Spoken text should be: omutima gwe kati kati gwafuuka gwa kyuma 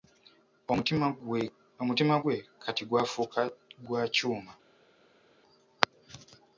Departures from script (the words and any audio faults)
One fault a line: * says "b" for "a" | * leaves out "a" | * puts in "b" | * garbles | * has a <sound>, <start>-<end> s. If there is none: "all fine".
* leaves out "kati"